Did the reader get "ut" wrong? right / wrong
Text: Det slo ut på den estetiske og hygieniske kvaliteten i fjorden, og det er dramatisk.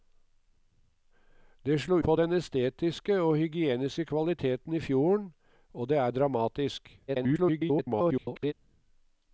wrong